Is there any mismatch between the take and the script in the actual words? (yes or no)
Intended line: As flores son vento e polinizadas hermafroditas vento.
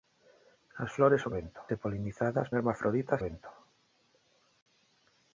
no